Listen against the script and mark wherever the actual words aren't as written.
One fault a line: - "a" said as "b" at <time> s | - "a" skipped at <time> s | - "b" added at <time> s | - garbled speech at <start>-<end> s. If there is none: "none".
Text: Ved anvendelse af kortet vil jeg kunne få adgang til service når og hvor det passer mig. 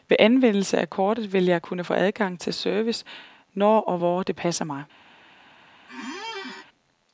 none